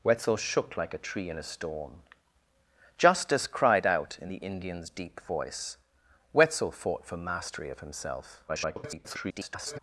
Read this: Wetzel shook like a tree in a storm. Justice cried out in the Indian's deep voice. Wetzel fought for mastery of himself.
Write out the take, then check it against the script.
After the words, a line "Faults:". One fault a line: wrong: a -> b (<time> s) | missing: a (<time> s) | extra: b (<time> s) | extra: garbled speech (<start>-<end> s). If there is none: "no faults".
Wetzel shook like a tree in a storm. Justice cried out in the Indian's deep voice. Wetzel fought for mastery of himself. [garbled]
Faults:
extra: garbled speech (8.5-9.8 s)